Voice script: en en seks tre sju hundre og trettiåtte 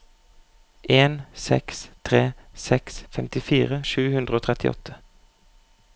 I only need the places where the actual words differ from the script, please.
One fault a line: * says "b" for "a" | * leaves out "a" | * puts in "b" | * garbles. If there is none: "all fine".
* says "seks tre" for "en"
* says "femtifire" for "tre"